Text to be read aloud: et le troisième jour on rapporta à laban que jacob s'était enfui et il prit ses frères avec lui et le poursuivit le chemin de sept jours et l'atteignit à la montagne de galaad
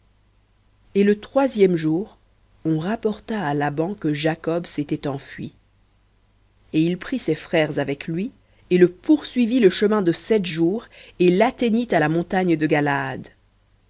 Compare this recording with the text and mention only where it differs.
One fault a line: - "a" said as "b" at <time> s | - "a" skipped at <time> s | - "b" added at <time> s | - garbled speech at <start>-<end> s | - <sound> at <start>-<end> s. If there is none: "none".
none